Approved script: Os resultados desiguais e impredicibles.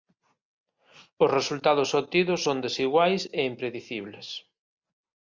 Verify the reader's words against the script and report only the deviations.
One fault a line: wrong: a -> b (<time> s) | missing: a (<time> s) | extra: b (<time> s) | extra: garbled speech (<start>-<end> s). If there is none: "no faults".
extra: obtidos son (2.0 s)